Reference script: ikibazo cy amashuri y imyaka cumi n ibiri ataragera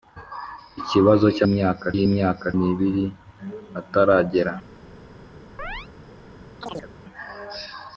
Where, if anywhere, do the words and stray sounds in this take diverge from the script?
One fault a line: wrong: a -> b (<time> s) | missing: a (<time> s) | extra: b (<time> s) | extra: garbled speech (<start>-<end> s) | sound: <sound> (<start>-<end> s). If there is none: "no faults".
wrong: amashuri -> imyaka (1.5 s)
missing: cumi (2.5 s)
sound: chirp (5.6-5.9 s)
sound: chirp (6.6-6.9 s)